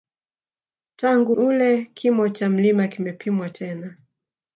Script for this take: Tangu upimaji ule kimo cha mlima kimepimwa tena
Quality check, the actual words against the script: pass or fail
fail